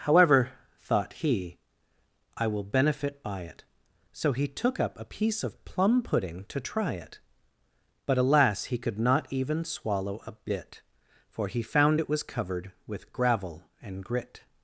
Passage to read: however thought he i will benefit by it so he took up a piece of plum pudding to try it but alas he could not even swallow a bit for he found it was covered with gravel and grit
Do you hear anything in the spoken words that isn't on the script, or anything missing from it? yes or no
no